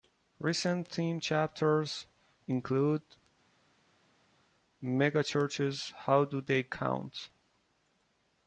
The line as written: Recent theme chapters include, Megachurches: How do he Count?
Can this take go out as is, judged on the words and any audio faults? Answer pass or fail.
fail